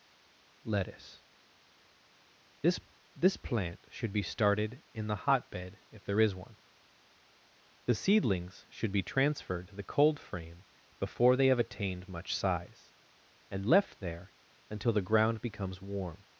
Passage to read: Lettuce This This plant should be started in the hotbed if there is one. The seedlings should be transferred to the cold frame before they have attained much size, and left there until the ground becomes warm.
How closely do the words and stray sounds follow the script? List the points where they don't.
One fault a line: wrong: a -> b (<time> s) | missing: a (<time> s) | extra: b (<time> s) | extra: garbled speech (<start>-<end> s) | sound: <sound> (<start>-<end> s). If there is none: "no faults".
no faults